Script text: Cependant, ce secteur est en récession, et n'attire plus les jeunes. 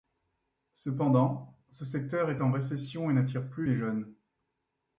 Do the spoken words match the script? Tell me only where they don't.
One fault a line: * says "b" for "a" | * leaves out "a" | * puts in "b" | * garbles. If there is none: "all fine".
all fine